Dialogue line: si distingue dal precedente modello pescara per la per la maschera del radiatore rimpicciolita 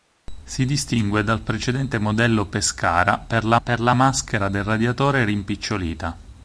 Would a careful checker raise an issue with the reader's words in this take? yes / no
no